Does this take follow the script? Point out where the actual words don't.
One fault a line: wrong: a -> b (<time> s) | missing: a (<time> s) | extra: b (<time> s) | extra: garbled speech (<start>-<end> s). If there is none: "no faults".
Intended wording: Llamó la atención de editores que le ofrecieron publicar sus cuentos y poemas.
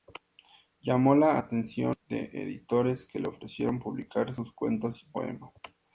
no faults